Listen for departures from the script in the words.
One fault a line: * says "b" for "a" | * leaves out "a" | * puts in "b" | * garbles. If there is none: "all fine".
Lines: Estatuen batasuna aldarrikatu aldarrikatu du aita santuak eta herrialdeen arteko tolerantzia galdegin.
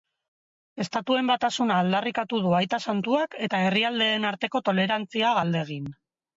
* leaves out "aldarrikatu"